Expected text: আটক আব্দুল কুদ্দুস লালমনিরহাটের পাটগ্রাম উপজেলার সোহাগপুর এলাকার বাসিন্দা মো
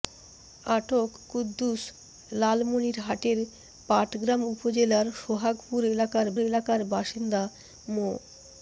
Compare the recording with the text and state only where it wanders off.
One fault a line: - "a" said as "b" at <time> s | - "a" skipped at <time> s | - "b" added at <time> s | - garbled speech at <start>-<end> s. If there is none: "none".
- "আব্দুল" skipped at 1.1 s
- "এলাকার" added at 6.4 s